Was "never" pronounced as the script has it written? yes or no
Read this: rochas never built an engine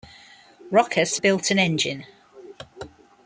no